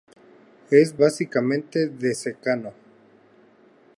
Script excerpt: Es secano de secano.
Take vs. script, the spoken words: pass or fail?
fail